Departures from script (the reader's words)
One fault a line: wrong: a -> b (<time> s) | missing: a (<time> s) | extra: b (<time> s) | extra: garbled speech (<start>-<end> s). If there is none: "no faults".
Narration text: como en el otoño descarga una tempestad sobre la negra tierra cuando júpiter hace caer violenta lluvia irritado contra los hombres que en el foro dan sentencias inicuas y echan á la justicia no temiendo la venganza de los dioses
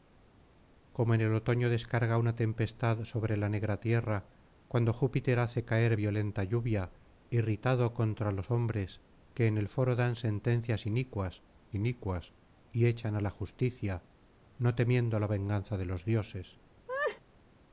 extra: inicuas (11.7 s)